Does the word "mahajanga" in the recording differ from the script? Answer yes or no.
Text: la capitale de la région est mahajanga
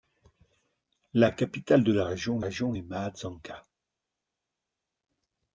no